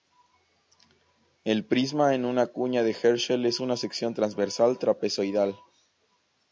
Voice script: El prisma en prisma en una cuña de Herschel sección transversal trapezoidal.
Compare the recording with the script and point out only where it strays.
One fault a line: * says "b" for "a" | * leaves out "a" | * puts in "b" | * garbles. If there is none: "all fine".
* leaves out "prisma en"
* puts in "es una"